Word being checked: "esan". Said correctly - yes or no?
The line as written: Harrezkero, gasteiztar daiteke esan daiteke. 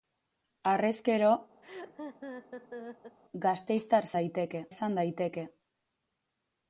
yes